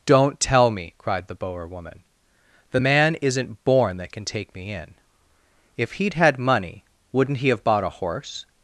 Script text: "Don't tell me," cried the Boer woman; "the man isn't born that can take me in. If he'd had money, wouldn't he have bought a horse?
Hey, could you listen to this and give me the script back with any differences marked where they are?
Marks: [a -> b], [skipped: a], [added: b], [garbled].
"Don't tell me," cried the Boer woman; "the man isn't born that can take me in. If he'd had money, wouldn't he have bought a horse?